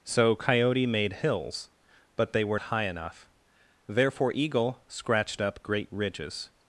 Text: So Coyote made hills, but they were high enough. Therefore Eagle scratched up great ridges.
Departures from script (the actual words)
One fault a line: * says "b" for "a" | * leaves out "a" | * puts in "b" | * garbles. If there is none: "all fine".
all fine